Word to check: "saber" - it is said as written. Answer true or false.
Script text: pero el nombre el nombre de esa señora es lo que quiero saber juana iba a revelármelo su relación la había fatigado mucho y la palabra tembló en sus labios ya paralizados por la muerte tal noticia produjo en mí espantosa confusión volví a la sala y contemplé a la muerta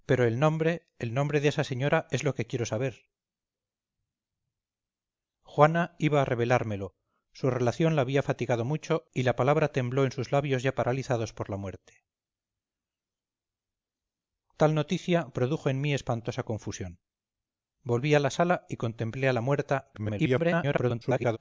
true